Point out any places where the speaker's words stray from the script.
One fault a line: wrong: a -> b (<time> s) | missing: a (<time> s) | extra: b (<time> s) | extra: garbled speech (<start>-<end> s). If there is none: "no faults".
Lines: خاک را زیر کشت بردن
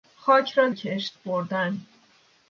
missing: زیر (0.7 s)